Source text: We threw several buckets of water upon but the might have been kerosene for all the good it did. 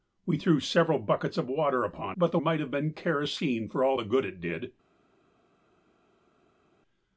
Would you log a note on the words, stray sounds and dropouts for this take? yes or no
no